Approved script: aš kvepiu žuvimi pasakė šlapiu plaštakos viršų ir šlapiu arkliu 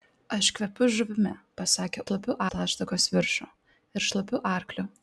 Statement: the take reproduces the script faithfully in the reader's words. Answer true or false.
true